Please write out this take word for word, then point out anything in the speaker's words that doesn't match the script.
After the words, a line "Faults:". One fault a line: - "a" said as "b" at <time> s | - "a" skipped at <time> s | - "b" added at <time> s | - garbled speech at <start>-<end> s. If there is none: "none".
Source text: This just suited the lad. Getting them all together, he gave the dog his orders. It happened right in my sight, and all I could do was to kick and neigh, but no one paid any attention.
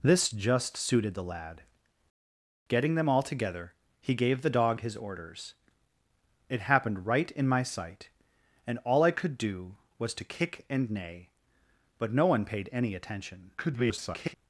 This just suited the lad. Getting them all together, he gave the dog his orders. It happened right in my sight, and all I could do was to kick and neigh, but no one paid any attention. [garbled]
Faults:
- garbled speech at 13.6-14.3 s